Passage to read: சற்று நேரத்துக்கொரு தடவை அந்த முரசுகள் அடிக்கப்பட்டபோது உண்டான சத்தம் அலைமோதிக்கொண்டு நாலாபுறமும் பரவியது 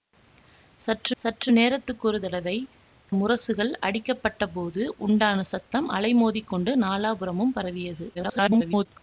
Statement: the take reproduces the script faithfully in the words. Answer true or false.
false